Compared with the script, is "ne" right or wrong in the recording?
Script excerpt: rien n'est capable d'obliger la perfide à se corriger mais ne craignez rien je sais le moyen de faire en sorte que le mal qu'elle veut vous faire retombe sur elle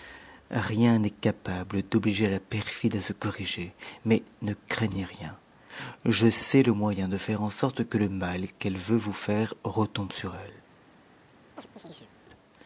right